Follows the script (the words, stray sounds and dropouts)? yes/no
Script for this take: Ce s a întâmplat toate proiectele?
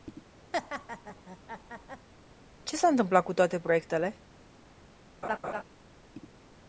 no